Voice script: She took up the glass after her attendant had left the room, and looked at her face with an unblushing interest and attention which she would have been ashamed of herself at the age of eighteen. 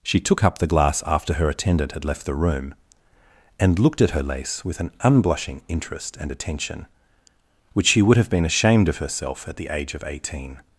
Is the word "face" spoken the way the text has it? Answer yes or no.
no